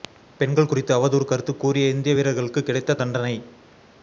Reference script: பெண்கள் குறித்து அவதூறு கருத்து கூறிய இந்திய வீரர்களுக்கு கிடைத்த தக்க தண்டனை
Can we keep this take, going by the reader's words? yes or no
no